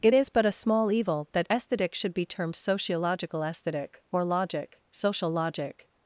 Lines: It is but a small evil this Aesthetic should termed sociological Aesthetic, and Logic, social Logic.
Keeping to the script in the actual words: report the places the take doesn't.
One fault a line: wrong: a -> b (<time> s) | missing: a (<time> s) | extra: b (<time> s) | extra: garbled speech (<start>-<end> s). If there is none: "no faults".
wrong: this -> that (1.3 s)
extra: be (2.1 s)
wrong: and -> or (4.1 s)